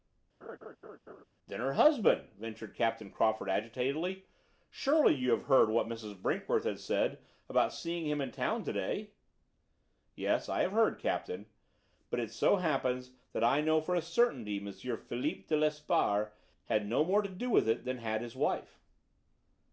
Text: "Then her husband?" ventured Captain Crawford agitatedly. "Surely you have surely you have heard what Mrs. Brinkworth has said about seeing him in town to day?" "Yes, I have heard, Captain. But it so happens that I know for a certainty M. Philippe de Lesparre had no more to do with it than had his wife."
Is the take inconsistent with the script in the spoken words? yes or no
yes